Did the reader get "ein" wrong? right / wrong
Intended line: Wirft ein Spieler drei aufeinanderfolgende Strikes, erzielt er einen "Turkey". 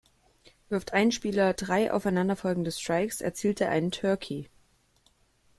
right